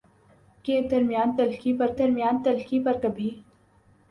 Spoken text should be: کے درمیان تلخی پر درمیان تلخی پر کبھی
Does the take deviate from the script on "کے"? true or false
false